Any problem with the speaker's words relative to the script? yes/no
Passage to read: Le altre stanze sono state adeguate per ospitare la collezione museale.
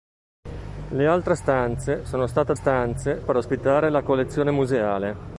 yes